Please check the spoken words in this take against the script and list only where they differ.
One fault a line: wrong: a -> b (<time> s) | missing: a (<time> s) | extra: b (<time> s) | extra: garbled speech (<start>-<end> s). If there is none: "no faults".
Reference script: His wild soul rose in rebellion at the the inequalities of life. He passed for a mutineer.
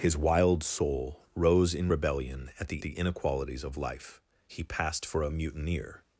no faults